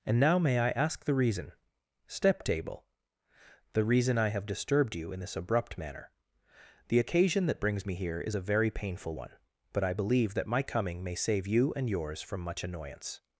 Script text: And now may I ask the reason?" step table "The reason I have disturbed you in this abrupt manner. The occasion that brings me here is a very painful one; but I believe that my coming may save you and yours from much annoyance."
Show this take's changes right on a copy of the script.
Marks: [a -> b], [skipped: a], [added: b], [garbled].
And now may I ask the reason?" step table "The reason I have disturbed you in this abrupt manner. The occasion that brings me here is a very painful one; but I believe that my coming may save you and yours from much annoyance."